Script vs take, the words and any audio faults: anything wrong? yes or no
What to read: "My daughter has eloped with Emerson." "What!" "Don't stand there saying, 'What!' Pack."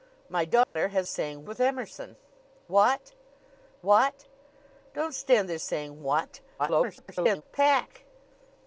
yes